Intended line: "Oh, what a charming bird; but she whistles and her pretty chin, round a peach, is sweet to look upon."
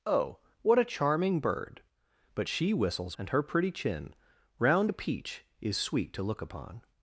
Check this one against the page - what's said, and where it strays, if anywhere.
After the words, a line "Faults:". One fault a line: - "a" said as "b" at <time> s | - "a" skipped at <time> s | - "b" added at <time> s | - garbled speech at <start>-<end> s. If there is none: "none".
"Oh, what a charming bird; but she whistles and her pretty chin, round a peach, is sweet to look upon."
Faults:
none